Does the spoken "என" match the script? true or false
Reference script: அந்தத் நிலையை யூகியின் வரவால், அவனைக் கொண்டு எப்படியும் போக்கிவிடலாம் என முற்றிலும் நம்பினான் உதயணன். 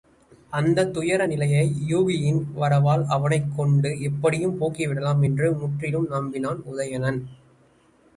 false